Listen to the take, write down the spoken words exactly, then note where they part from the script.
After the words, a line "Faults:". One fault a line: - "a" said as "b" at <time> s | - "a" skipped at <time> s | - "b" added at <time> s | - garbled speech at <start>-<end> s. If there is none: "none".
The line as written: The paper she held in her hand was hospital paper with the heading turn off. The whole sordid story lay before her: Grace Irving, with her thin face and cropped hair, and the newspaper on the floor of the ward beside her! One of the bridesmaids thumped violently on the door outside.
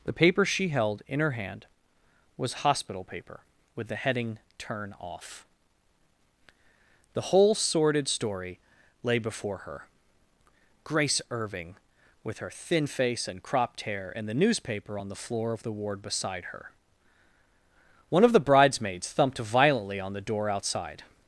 The paper she held in her hand was hospital paper with the heading turn off. The whole sordid story lay before her: Grace Irving, with her thin face and cropped hair, and the newspaper on the floor of the ward beside her! One of the bridesmaids thumped violently on the door outside.
Faults:
none